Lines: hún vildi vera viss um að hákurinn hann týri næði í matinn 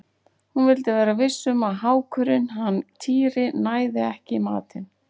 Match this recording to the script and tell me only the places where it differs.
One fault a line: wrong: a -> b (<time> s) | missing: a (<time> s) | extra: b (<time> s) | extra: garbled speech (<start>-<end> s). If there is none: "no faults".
extra: ekki (4.1 s)